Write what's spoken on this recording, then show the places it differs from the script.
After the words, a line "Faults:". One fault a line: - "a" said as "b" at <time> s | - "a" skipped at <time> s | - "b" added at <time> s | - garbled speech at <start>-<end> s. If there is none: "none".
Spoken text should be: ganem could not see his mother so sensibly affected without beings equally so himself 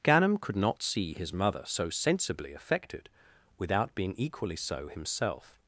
ganem could not see his mother so sensibly affected without being equally so himself
Faults:
- "beings" said as "being" at 3.9 s